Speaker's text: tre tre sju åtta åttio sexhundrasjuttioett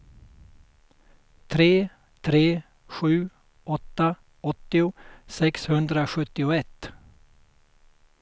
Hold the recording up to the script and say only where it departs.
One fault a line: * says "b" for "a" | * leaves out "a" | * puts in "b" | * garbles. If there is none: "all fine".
all fine